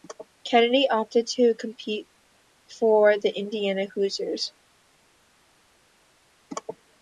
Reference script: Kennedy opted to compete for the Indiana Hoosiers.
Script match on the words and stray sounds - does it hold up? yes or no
yes